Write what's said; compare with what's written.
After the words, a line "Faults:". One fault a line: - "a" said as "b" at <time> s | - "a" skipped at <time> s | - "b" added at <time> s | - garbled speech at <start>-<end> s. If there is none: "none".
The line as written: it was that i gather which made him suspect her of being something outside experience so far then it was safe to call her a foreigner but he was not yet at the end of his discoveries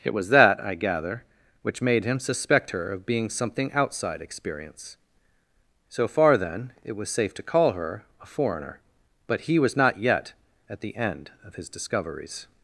it was that i gather which made him suspect her of being something outside experience so far then it was safe to call her a foreigner but he was not yet at the end of his discoveries
Faults:
none